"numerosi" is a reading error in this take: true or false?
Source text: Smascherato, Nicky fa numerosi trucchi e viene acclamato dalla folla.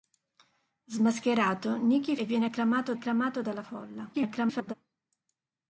true